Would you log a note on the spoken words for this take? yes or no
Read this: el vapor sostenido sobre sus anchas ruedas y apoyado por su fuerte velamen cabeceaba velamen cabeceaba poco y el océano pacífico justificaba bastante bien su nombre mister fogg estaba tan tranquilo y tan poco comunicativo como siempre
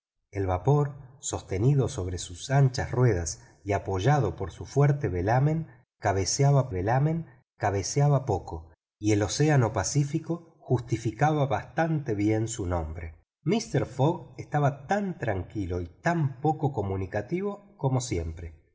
no